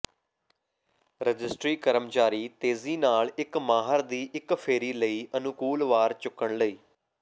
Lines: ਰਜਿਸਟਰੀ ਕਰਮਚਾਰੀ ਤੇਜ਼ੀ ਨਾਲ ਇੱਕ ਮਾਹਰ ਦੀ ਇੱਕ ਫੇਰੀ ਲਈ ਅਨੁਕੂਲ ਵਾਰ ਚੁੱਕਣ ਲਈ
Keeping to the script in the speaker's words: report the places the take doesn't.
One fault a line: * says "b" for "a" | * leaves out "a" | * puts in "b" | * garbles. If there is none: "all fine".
all fine